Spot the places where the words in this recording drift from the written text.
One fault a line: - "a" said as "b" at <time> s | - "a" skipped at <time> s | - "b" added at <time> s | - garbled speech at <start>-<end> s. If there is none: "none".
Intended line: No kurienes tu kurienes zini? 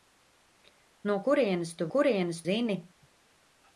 none